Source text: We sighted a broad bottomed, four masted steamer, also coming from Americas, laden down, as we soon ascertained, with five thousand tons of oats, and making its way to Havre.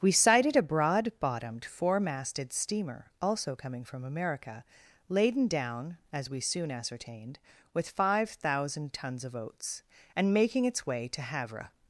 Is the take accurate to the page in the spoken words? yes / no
no